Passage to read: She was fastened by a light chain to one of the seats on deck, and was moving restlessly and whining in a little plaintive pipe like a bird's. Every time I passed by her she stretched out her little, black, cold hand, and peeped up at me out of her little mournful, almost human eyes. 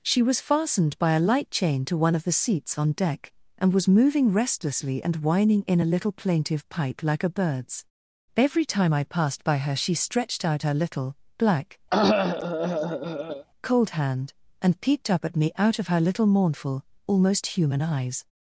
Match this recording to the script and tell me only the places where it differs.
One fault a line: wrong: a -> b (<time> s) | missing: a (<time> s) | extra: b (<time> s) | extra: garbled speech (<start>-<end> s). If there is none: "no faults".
no faults